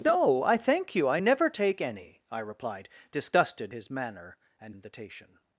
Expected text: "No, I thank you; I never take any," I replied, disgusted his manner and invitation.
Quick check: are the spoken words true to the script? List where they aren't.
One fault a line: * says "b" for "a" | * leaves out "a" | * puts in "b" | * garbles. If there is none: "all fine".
all fine